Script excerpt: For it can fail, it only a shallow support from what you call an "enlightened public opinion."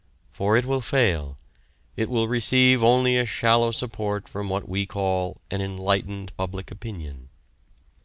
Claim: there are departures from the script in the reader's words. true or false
true